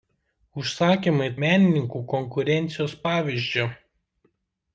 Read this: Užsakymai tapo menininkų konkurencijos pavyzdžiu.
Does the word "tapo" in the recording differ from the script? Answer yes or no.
yes